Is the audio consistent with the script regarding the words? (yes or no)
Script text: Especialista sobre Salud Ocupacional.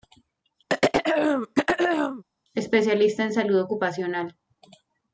no